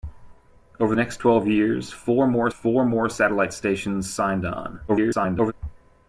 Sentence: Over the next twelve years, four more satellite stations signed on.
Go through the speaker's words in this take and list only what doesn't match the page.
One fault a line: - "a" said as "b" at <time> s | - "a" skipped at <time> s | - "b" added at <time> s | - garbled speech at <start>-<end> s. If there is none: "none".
- "the" skipped at 0.9 s
- "four more" added at 2.5 s
- garbled speech at 4.9-5.5 s